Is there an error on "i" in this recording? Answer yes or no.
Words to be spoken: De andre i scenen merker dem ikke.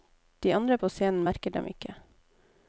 yes